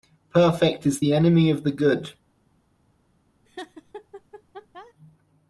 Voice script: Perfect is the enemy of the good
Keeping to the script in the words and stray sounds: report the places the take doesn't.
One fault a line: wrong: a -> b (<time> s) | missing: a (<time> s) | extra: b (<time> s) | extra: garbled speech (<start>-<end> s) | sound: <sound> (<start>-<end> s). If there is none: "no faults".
sound: laugh (3.4-4.9 s)